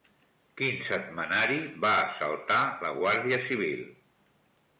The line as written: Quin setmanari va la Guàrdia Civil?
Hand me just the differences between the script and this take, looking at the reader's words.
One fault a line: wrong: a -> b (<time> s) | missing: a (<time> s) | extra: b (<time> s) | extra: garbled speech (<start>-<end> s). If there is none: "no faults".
extra: assaltar (2.0 s)